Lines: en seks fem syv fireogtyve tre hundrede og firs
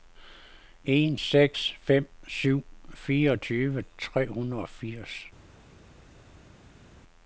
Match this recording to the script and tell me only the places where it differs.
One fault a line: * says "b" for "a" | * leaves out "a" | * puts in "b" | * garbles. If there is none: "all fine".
all fine